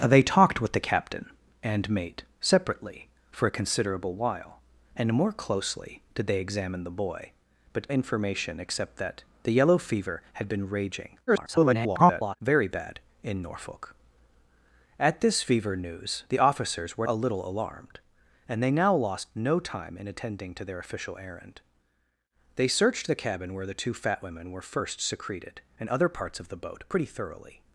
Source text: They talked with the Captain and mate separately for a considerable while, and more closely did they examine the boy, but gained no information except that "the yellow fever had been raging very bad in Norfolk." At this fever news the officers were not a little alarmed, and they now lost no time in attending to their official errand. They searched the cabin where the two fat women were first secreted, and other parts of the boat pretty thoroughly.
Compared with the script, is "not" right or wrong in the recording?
wrong